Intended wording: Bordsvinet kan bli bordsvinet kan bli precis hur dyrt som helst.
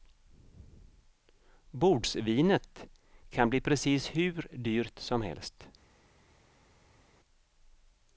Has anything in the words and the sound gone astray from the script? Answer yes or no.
yes